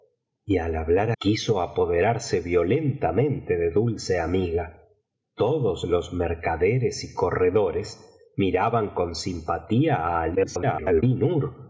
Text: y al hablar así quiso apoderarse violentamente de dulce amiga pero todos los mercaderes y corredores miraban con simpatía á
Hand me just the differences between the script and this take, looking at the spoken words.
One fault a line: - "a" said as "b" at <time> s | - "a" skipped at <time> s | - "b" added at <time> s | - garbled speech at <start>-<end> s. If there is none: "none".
- "así" skipped at 1.1 s
- "pero" skipped at 4.8 s
- garbled speech at 10.3-11.0 s